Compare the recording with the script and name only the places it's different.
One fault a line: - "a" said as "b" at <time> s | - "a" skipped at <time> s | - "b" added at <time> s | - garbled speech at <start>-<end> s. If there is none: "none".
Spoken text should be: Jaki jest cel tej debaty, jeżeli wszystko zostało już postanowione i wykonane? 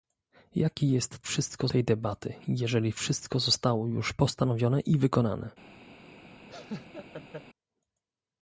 - "cel" said as "wszystko" at 1.2 s